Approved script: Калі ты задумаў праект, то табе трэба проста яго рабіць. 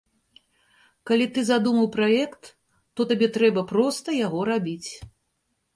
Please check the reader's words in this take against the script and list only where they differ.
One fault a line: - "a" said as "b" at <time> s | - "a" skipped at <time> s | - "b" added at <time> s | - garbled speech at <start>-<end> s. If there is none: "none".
none